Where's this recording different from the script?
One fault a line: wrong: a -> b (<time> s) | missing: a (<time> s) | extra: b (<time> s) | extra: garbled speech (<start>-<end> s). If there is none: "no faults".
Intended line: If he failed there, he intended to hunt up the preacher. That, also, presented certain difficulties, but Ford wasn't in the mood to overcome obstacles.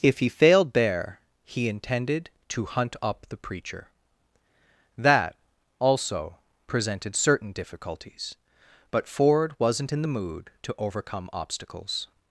no faults